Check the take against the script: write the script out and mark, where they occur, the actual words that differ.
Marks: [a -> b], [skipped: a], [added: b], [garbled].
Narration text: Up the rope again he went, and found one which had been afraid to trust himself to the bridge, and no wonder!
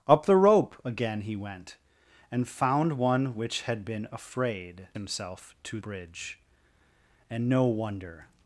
Up the rope again he went, and found one which had been afraid [skipped: to trust] himself to [skipped: the] bridge, and no wonder!